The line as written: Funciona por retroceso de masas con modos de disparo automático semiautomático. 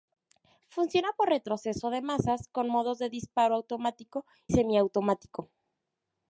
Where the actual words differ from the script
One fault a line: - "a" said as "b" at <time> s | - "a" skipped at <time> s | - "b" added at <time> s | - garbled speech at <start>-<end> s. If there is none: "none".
none